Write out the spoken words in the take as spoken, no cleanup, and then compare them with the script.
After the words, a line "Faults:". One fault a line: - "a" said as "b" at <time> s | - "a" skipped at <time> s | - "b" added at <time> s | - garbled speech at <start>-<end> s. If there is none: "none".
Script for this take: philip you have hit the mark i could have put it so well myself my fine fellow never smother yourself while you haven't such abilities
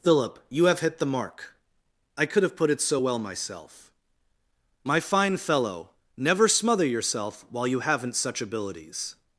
philip you have hit the mark i could have put it so well myself my fine fellow never smother yourself while you haven't such abilities
Faults:
none